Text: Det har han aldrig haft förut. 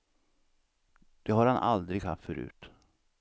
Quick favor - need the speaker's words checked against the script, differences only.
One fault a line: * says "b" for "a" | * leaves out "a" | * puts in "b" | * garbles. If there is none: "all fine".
all fine